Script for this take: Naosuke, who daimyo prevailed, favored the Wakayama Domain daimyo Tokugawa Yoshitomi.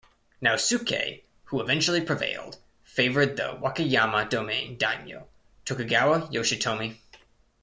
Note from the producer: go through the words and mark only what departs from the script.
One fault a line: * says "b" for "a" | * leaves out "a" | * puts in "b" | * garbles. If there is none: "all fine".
* says "eventually" for "daimyo"